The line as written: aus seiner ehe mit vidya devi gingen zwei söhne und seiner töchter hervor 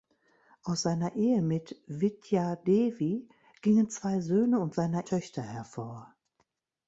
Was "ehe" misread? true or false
false